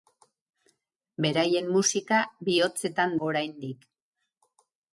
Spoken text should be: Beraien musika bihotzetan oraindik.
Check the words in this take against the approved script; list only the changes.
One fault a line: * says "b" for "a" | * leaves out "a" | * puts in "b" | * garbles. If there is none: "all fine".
all fine